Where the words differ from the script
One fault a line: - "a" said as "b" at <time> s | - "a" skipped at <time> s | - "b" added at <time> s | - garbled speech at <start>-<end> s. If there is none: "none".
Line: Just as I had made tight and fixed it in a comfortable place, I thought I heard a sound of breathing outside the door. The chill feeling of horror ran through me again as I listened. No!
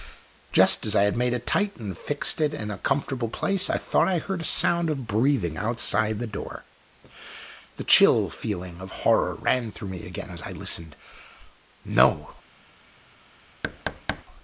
- "it" added at 1.3 s